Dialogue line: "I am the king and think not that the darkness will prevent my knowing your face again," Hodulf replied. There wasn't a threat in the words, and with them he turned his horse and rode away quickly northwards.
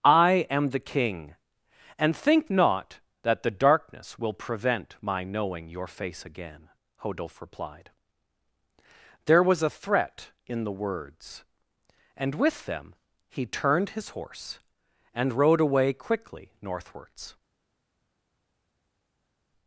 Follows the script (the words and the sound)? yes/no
no